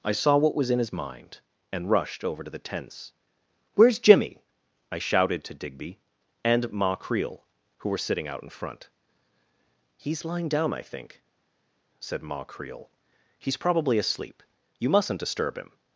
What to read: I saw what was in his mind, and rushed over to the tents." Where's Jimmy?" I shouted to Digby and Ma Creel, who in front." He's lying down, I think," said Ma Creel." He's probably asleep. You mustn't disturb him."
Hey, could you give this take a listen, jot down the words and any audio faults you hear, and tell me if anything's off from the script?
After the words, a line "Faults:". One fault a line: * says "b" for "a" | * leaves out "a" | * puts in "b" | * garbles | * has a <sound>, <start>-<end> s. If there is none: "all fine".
I saw what was in his mind, and rushed over to the tents." Where's Jimmy?" I shouted to Digby and Ma Creel, who were sitting out in front." He's lying down, I think," said Ma Creel." He's probably asleep. You mustn't disturb him."
Faults:
* puts in "were sitting out"